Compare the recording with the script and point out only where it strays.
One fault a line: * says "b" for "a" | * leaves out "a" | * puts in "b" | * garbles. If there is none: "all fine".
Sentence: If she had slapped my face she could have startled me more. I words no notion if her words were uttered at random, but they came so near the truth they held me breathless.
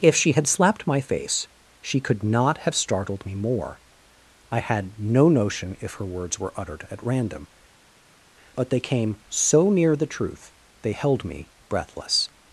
* puts in "not"
* says "had" for "words"